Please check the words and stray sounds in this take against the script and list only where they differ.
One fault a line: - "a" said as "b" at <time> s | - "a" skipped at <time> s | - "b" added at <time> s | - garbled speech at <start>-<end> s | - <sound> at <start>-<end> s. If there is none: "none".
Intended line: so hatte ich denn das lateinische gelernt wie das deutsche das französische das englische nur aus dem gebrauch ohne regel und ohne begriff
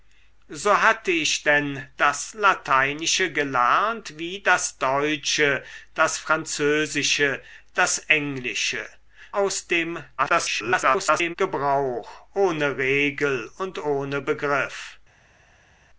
- "nur" skipped at 8.8 s
- garbled speech at 10.2-11.3 s